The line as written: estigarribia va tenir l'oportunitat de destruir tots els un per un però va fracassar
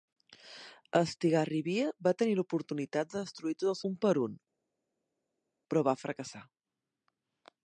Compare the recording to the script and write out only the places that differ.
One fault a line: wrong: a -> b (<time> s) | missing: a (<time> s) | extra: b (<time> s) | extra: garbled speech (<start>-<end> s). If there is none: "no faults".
no faults